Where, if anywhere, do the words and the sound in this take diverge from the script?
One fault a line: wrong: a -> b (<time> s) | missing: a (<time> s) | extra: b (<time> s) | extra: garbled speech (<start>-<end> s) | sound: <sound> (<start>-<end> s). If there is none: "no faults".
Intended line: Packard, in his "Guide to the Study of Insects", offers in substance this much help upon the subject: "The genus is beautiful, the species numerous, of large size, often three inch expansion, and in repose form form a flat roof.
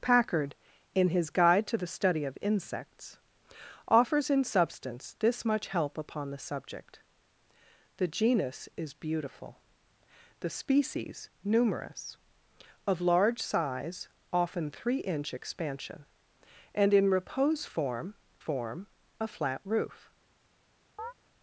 sound: chirp (21.0-21.1 s)